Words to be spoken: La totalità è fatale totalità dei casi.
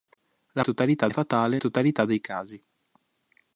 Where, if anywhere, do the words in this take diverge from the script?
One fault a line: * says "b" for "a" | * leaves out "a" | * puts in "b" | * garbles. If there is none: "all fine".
all fine